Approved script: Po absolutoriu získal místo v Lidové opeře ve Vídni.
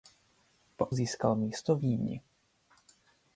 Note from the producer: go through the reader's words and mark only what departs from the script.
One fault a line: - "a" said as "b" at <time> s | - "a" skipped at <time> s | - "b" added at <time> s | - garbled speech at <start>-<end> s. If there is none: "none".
- "absolutoriu" skipped at 0.9 s
- "Lidové opeře ve" skipped at 1.8 s